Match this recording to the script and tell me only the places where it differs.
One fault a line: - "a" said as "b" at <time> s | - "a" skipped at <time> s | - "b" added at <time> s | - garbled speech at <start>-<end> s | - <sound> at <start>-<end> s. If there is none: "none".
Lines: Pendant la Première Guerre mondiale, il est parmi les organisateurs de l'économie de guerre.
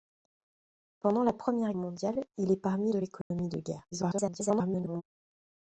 - "Guerre" skipped at 1.8 s
- "les organisateurs" skipped at 2.9 s
- dropout at 3.2-3.3 s
- garbled speech at 3.9-5.0 s